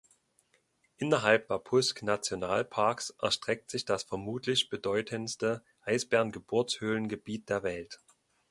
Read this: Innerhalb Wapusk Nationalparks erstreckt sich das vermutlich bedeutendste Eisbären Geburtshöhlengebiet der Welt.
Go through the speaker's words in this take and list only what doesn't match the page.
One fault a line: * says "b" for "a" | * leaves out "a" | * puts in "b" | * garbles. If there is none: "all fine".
all fine